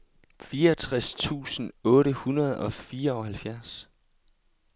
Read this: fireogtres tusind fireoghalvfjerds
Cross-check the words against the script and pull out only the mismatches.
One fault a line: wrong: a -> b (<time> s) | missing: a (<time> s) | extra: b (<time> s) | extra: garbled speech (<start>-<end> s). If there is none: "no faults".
extra: otte hundrede og (1.8 s)